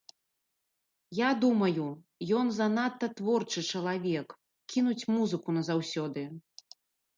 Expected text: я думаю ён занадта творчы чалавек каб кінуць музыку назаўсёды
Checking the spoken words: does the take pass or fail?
fail